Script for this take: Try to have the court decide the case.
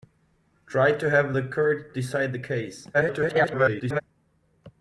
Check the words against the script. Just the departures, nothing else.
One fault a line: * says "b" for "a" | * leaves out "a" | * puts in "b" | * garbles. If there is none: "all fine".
* garbles